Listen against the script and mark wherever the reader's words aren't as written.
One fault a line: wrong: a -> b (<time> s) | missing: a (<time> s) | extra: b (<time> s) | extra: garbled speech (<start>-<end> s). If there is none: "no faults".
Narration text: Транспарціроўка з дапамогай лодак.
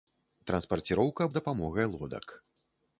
no faults